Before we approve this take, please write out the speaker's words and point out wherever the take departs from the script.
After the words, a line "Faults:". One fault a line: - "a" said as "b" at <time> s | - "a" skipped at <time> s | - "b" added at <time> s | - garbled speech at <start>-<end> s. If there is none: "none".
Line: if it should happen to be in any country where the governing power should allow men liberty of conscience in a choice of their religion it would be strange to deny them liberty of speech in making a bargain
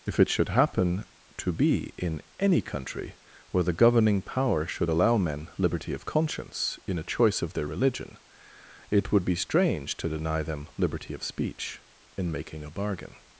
if it should happen to be in any country where the governing power should allow men liberty of conscience in a choice of their religion it would be strange to deny them liberty of speech in making a bargain
Faults:
none